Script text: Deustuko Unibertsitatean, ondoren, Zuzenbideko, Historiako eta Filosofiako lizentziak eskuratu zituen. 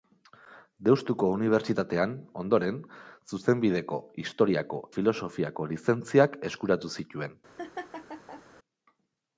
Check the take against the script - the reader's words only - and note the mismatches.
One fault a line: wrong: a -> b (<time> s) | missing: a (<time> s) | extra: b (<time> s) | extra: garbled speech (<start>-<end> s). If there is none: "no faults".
missing: eta (4.8 s)